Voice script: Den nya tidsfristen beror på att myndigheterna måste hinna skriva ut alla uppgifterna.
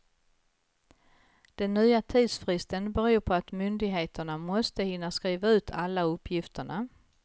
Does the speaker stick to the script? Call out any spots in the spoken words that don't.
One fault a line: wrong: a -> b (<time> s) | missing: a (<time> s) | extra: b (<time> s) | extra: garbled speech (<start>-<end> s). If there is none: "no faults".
no faults